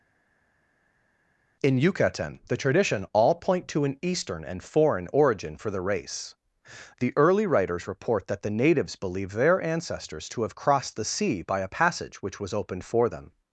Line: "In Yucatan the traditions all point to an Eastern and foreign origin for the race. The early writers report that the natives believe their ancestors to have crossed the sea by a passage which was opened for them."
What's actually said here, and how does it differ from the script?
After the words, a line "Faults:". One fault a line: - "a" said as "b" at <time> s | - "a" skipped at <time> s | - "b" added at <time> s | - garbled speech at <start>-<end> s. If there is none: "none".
"In Yucatan the tradition all point to an Eastern and foreign origin for the race. The early writers report that the natives believe their ancestors to have crossed the sea by a passage which was opened for them."
Faults:
- "traditions" said as "tradition" at 2.6 s